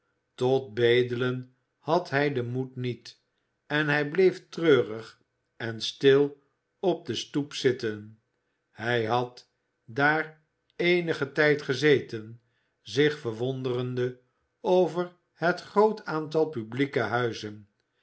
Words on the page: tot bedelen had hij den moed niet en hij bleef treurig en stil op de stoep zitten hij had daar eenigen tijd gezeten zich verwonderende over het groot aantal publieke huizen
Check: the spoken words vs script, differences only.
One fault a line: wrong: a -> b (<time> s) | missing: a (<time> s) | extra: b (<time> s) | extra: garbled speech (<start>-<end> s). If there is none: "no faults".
no faults